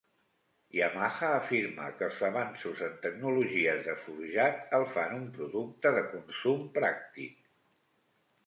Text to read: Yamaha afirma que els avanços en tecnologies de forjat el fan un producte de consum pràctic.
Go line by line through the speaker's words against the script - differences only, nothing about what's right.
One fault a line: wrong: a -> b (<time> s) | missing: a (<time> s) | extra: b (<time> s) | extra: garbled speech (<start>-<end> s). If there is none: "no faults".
no faults